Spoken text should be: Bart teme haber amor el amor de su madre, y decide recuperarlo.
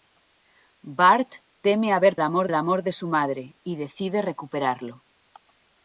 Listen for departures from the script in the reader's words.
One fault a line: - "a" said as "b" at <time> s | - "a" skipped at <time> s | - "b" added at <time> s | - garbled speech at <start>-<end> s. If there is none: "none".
none